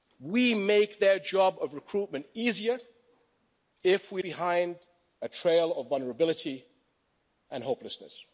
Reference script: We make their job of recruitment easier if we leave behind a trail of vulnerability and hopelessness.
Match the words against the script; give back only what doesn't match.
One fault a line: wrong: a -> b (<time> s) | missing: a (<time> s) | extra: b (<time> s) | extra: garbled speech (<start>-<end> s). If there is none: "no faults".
missing: leave (4.2 s)